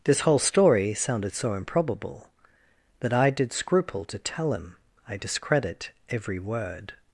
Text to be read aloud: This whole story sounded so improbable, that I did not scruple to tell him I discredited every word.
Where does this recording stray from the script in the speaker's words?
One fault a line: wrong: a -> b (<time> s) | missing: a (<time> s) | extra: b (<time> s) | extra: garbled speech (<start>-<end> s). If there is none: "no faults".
missing: not (3.5 s)
wrong: discredited -> discredit (5.2 s)